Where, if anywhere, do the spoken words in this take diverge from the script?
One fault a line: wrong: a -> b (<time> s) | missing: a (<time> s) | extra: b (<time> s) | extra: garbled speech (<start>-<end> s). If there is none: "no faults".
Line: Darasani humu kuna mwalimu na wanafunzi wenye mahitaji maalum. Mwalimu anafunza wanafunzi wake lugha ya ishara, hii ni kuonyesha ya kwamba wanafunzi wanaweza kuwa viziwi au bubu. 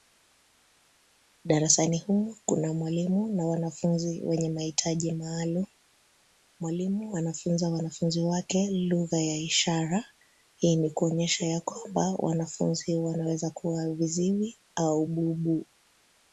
no faults